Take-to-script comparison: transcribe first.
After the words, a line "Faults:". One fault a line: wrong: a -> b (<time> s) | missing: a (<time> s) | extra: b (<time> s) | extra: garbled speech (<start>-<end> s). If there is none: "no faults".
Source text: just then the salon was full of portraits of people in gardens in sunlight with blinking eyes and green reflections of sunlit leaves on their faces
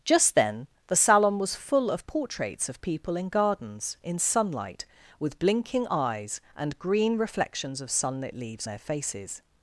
just then the salon was full of portraits of people in gardens in sunlight with blinking eyes and green reflections of sunlit leaves their faces
Faults:
missing: on (8.7 s)